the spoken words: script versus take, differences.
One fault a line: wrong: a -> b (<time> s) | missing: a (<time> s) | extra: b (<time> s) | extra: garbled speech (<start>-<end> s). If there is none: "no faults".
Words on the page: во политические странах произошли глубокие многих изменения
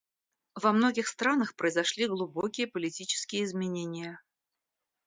wrong: политические -> многих (0.7 s)
wrong: многих -> политические (2.6 s)